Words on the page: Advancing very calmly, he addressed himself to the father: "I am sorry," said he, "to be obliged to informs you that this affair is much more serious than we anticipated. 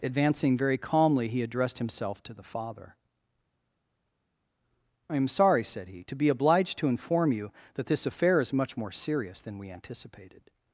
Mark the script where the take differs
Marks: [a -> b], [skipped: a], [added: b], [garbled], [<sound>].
Advancing very calmly, he addressed himself to the father: "I am sorry," said he, "to be obliged to [informs -> inform] you that this affair is much more serious than we anticipated.